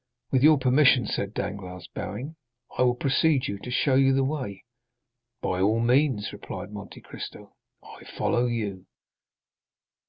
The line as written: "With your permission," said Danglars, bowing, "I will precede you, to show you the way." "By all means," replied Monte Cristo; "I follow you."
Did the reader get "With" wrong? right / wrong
right